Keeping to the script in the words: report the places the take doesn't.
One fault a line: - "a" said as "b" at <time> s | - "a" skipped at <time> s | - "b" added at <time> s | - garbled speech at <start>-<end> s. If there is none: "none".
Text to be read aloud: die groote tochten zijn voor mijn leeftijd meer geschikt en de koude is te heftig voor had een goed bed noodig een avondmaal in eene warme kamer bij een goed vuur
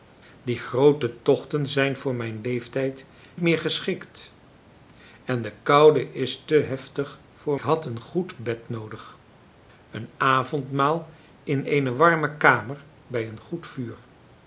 none